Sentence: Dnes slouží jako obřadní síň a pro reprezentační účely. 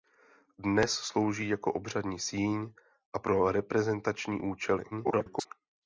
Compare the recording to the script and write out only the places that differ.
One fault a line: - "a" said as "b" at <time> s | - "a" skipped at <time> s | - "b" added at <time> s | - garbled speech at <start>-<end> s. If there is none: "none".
- garbled speech at 4.9-5.5 s